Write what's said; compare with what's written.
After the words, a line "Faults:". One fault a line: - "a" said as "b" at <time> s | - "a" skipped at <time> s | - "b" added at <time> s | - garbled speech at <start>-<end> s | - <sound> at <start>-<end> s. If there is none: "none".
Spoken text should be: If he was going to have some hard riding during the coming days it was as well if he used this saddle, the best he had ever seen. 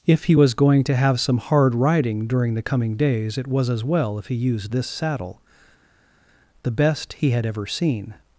If he was going to have some hard riding during the coming days it was as well if he used this saddle, the best he had ever seen.
Faults:
none